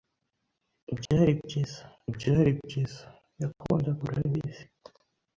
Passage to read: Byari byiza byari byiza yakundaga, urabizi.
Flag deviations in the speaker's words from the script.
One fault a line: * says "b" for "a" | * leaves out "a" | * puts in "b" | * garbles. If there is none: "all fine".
all fine